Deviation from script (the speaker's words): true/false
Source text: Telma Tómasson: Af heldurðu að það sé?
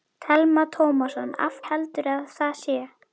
false